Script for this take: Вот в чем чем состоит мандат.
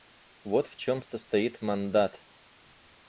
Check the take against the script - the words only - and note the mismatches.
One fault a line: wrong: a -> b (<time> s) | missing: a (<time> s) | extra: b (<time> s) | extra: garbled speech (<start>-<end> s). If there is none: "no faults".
missing: чем (1.0 s)